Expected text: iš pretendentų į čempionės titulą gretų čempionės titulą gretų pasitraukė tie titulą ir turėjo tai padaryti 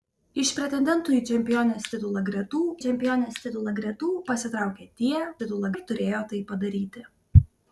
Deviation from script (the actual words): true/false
false